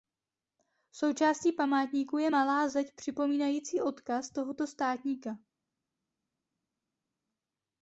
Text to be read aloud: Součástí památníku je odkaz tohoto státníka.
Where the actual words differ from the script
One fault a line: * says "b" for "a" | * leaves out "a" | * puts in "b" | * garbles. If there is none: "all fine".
* puts in "malá zeď připomínající"